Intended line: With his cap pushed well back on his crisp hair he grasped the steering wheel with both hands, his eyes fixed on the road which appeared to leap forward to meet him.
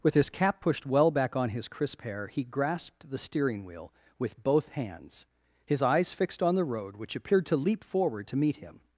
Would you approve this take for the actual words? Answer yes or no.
yes